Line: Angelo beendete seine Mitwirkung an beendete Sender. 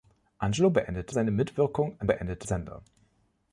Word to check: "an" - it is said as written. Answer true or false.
true